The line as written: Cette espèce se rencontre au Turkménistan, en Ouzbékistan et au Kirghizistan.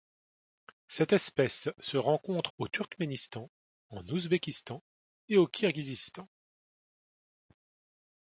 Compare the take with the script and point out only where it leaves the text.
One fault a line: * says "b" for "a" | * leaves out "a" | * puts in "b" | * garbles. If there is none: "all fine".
all fine